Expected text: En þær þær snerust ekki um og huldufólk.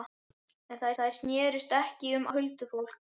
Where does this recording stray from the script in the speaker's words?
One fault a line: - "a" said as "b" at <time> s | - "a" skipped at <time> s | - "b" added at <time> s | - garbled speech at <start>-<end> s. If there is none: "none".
none